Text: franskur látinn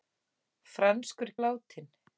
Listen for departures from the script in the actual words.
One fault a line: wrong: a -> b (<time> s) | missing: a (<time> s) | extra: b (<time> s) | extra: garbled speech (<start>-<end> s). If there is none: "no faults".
no faults